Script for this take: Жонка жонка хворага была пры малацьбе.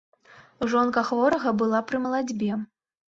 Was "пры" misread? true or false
false